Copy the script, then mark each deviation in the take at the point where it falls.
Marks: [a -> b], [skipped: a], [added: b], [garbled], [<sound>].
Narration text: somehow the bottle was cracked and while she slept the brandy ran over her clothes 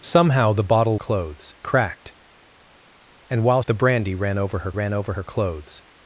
somehow the bottle [was -> clothes] cracked and while [she slept the brandy -> the brandy ran over her] ran over her clothes